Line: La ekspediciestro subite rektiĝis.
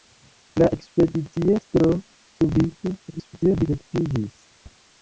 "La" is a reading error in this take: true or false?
false